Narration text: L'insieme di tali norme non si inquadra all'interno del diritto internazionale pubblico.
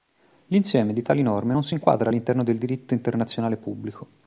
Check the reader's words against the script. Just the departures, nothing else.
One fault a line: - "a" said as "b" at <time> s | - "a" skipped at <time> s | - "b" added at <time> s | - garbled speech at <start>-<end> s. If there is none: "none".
none